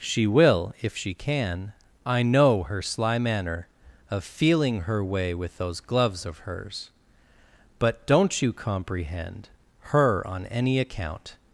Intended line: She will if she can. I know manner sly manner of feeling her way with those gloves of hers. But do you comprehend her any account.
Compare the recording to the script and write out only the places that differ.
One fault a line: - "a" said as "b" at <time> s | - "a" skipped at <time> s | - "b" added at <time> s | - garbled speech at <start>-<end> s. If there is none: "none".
- "manner" said as "her" at 2.6 s
- "do" said as "don't" at 8.1 s
- "on" added at 10.3 s